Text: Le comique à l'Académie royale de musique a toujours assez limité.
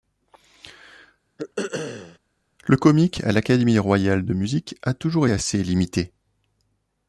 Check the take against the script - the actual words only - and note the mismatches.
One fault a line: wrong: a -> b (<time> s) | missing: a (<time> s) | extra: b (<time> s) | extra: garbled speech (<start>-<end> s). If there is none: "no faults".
no faults